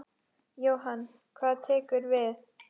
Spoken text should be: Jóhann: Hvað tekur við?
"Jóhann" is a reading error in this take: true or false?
false